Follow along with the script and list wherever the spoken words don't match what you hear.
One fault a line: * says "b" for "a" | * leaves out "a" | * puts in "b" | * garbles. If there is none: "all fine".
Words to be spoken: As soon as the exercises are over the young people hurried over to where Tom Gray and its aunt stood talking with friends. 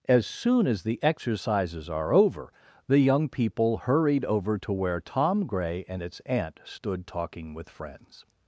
all fine